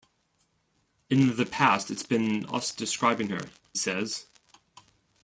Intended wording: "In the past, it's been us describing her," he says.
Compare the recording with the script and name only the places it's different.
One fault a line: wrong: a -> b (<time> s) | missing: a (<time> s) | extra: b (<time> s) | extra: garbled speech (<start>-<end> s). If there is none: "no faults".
missing: he (3.5 s)